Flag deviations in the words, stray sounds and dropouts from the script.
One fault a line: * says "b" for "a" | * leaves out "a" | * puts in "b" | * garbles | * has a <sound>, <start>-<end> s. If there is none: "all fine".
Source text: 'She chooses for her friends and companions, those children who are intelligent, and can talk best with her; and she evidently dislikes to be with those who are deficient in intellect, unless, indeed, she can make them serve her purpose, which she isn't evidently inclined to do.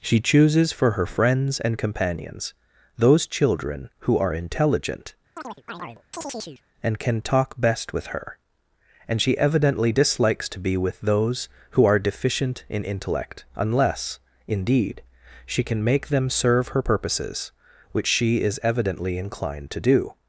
* has a chirp, 5.4-6.6 s
* says "purposes" for "purpose"
* says "is" for "isn't"